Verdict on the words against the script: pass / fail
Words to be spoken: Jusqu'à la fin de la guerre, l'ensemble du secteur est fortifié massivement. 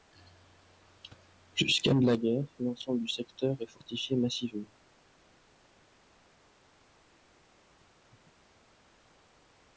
fail